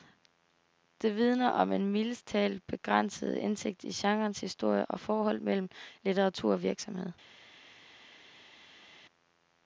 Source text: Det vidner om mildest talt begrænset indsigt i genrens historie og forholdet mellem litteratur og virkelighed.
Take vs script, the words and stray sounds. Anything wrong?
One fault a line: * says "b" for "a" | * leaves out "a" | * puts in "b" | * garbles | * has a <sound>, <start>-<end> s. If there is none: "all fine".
* puts in "en"